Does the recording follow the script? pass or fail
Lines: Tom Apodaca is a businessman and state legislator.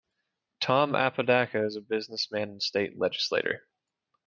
pass